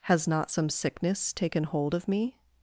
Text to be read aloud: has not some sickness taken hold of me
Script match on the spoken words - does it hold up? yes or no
yes